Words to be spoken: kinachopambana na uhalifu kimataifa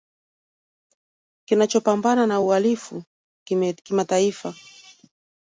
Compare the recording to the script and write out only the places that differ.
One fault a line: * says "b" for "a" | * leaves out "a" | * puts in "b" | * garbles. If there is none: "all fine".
all fine